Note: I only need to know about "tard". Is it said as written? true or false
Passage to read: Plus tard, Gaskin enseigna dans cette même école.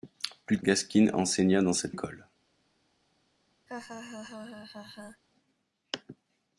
false